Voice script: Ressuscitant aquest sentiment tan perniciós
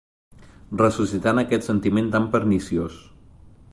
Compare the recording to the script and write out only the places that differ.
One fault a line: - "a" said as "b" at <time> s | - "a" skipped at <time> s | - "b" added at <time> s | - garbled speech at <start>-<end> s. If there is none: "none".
none